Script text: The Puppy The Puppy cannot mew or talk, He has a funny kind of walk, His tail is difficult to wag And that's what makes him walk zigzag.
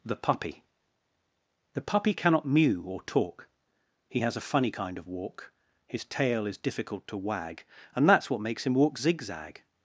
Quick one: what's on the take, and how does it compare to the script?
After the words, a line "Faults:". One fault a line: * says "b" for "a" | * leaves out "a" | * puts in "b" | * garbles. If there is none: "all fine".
The Puppy The Puppy cannot mew or talk, He has a funny kind of walk, His tail is difficult to wag And that's what makes him walk zigzag.
Faults:
all fine